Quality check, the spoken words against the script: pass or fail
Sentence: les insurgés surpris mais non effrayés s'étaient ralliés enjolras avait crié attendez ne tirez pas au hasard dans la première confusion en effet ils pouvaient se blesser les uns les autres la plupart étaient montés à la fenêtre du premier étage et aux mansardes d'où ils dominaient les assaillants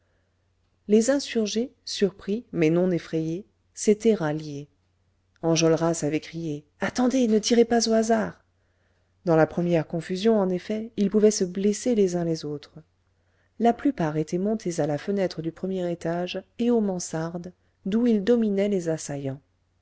pass